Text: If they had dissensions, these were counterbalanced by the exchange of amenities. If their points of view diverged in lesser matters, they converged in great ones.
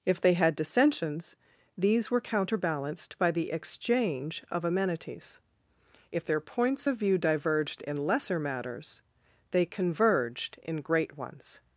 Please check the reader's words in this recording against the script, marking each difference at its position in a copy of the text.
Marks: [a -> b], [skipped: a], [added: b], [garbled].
If they had dissensions, these were counterbalanced by the exchange of amenities. If their points of view diverged in lesser matters, they converged in great ones.